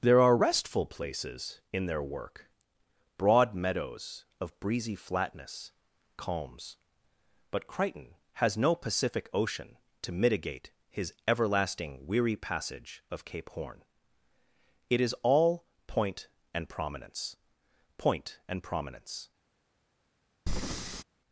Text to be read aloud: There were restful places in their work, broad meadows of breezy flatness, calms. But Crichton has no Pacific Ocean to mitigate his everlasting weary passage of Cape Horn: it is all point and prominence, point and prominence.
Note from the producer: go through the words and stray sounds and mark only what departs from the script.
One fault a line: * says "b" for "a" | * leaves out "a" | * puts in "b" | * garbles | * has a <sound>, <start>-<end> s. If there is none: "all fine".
* says "are" for "were"
* has a breath, 20.5-21.0 s